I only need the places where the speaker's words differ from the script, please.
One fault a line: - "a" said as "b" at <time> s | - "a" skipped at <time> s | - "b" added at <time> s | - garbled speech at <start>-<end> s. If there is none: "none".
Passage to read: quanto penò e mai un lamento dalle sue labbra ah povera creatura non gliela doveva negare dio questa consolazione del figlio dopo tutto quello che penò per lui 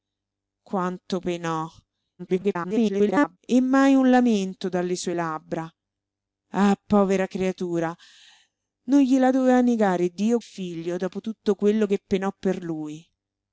- garbled speech at 2.2-3.4 s
- "questa consolazione del" skipped at 10.4 s